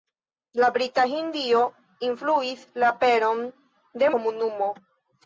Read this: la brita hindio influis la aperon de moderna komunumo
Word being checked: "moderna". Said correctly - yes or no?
no